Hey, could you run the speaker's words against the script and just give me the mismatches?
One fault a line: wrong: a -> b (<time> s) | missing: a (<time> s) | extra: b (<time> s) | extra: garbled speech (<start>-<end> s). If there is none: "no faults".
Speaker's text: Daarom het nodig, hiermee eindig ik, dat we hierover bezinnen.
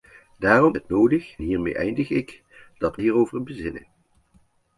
no faults